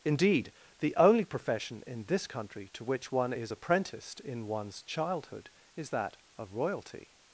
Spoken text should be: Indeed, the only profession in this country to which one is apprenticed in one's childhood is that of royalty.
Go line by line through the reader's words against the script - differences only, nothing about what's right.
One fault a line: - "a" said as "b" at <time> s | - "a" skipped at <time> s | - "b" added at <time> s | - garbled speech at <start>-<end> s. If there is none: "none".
none